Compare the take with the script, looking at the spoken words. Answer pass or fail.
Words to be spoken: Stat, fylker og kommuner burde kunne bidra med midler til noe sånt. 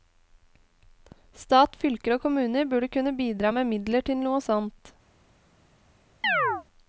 pass